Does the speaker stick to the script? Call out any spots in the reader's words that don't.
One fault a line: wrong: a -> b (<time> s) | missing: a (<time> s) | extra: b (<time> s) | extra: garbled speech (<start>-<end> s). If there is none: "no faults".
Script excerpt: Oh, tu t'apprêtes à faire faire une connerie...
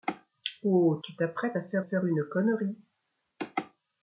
no faults